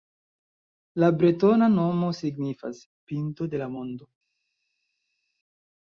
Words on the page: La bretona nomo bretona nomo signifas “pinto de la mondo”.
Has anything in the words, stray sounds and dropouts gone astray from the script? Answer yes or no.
yes